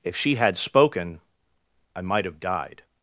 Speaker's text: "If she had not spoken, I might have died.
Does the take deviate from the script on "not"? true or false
true